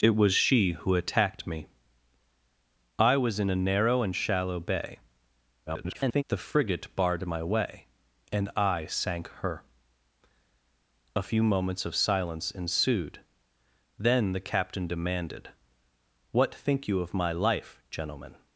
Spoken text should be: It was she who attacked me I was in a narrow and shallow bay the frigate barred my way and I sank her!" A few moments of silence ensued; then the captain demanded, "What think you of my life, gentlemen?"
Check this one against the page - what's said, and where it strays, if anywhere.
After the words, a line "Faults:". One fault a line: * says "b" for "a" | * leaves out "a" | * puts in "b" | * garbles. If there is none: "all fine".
It was she who attacked me I was in a narrow and shallow bay [garbled] the frigate barred my way and I sank her!" A few moments of silence ensued; then the captain demanded, "What think you of my life, gentlemen?"
Faults:
* garbles